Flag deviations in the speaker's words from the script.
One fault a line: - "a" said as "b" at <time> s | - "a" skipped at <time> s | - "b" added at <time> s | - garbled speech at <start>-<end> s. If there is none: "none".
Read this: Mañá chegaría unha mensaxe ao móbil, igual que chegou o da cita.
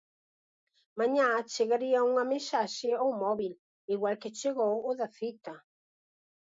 none